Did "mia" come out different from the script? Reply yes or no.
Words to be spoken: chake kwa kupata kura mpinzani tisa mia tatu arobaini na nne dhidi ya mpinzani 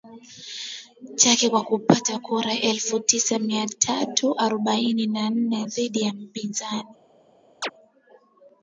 no